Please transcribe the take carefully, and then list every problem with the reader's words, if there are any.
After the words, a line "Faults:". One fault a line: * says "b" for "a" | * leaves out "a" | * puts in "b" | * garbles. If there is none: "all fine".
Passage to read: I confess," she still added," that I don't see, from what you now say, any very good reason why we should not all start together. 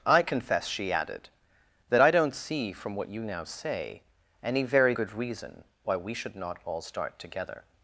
I confess," she added," that I don't see, from what you now say, any very good reason why we should not all start together.
Faults:
* leaves out "still"